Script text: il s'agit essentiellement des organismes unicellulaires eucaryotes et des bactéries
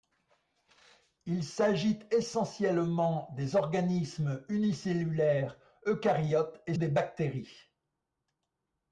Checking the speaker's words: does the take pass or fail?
pass